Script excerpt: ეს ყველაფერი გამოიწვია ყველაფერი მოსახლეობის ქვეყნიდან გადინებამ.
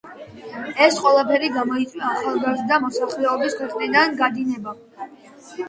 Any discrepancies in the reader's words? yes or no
yes